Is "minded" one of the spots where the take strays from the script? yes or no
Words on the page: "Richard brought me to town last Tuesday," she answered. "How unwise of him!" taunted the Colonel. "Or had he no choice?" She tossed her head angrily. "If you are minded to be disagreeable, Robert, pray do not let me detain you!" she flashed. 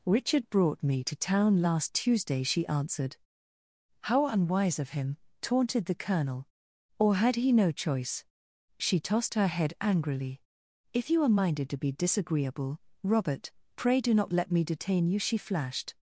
no